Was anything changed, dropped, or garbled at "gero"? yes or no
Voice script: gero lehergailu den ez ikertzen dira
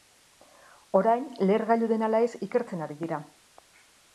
yes